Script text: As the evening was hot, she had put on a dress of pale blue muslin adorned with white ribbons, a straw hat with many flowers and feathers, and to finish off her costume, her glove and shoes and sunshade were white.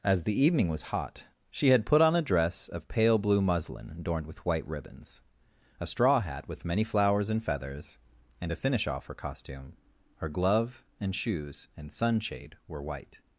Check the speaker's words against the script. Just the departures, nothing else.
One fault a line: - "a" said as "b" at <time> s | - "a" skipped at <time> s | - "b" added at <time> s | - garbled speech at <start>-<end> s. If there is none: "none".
none